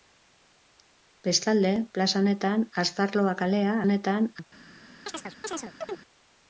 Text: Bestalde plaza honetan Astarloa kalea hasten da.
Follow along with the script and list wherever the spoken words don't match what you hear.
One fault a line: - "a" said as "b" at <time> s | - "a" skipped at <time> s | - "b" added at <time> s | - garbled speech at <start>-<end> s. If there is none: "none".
- "hasten" said as "honetan" at 3.9 s